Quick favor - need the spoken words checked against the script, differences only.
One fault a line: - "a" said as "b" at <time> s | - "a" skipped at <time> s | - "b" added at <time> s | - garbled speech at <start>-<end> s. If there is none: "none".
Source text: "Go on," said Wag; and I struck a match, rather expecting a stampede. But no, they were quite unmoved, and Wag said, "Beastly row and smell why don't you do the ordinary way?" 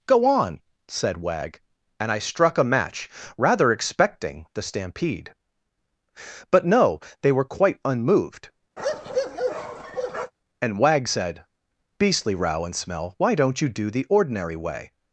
- "a" said as "the" at 4.5 s